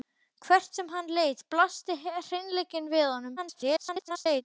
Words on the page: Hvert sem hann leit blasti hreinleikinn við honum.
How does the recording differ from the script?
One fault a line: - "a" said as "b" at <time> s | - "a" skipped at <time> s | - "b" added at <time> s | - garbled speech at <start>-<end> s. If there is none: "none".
- garbled speech at 3.4-4.4 s